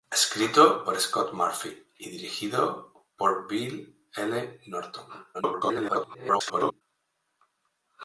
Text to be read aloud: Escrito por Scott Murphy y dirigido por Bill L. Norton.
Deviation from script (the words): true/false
true